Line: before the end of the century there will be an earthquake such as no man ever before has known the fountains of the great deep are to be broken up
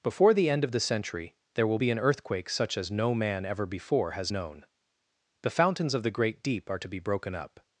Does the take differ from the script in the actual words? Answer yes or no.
no